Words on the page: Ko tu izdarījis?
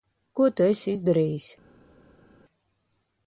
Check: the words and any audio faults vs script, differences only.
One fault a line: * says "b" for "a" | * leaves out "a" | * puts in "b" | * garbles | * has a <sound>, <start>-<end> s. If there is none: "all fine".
* puts in "esi"